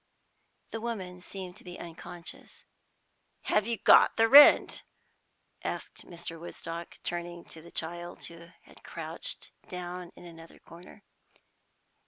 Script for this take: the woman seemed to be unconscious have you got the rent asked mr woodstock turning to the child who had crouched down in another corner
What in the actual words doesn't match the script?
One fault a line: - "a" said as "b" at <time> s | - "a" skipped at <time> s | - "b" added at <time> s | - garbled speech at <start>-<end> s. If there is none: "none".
none